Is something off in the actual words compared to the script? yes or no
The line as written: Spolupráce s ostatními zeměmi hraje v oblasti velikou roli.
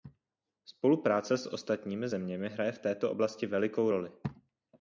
yes